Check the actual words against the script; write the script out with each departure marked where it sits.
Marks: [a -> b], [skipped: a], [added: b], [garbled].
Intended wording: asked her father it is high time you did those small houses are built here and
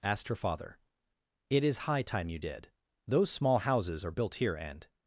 asked her father it is high time you did those small houses are built here and